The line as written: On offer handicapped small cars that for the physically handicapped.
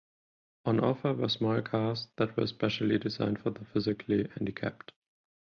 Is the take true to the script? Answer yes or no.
no